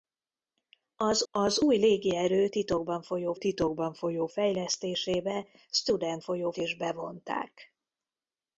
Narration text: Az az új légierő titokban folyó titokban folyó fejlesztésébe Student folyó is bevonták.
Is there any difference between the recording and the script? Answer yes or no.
no